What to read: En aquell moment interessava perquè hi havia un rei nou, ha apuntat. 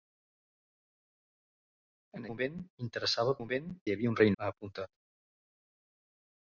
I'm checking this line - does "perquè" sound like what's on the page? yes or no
no